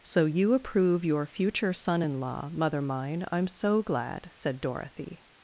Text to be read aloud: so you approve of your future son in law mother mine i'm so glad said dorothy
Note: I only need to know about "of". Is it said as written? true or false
false